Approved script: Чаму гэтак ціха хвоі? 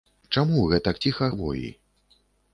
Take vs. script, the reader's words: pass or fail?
pass